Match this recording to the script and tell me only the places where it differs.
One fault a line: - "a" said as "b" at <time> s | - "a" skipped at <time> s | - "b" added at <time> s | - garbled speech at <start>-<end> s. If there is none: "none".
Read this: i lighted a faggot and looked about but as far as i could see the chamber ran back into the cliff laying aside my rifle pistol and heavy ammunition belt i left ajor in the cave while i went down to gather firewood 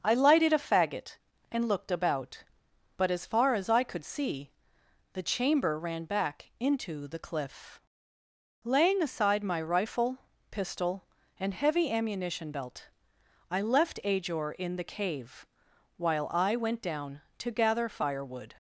none